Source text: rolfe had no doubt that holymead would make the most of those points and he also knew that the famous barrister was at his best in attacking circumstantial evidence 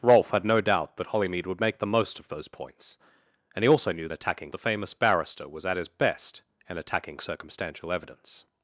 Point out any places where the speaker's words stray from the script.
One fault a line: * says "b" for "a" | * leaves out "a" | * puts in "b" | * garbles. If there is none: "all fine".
* says "attacking" for "that"